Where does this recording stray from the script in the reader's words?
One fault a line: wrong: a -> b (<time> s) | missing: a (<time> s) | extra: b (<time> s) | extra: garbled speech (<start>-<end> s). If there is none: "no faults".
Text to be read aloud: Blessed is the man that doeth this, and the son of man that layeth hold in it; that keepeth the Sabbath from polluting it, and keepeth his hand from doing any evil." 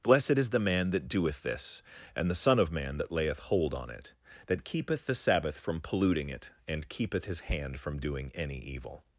wrong: in -> on (3.7 s)